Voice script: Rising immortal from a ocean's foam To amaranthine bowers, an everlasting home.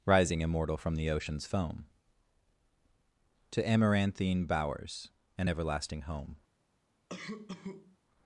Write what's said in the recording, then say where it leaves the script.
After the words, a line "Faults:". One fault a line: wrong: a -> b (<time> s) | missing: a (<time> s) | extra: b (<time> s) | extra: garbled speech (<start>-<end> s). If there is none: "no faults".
Rising immortal from the ocean's foam To amaranthine bowers, an everlasting home.
Faults:
wrong: a -> the (0.9 s)